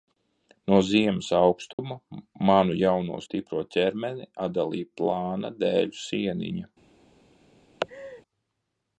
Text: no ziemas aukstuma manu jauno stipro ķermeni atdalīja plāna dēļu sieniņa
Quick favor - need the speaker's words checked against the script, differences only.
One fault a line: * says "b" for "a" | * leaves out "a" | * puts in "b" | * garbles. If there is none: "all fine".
all fine